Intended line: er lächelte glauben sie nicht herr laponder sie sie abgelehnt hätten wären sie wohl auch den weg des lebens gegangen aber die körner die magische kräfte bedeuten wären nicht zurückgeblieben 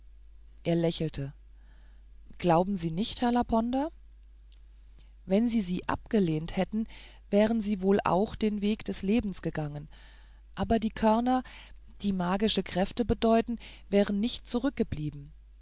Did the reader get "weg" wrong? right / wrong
right